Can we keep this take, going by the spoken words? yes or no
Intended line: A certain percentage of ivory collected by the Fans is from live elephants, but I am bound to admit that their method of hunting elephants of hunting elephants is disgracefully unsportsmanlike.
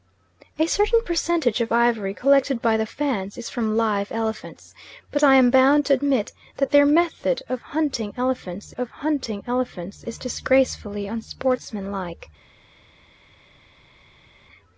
yes